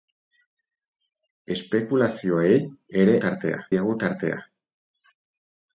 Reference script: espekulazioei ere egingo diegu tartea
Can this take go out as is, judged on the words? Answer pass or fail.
fail